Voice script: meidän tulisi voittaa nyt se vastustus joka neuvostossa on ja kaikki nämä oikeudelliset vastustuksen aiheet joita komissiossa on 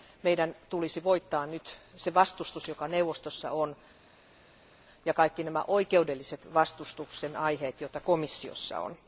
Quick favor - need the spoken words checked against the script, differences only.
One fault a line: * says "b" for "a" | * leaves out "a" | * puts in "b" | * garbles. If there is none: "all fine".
all fine